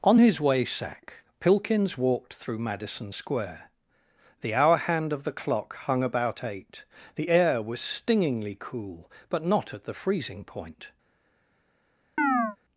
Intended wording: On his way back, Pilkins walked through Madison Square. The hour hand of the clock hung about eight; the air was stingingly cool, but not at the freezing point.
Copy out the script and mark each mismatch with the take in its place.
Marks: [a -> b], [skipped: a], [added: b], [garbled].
On his way [back, -> sack] Pilkins walked through Madison Square. The hour hand of the clock hung about eight; the air was stingingly cool, but not at the freezing point.